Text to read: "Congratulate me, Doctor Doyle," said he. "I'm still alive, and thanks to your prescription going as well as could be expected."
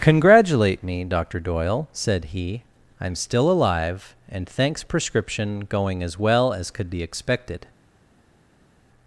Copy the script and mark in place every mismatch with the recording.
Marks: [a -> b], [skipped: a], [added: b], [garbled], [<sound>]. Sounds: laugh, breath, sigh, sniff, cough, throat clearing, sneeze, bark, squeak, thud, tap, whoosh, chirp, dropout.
"Congratulate me, Doctor Doyle," said he. "I'm still alive, and thanks [skipped: to your] prescription going as well as could be expected."